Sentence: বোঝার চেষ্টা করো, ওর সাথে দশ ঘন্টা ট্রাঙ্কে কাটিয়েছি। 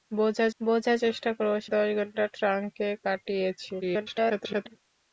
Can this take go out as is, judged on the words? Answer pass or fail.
fail